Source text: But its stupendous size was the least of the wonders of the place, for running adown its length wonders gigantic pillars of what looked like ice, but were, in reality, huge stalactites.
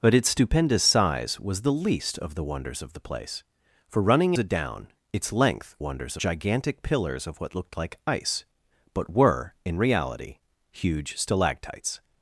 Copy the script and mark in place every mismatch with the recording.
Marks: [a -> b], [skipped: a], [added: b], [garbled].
But its stupendous size was the least of the wonders of the place, for running adown its length wonders gigantic pillars of what looked like ice, but were, in reality, huge stalactites.